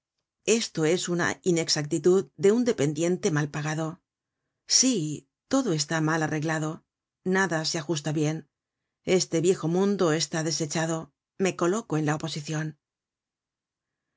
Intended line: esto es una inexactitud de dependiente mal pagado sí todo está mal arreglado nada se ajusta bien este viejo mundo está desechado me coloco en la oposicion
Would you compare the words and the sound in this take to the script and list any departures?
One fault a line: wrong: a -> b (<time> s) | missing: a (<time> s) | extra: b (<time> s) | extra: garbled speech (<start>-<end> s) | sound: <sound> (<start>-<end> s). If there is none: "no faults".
extra: un (2.5 s)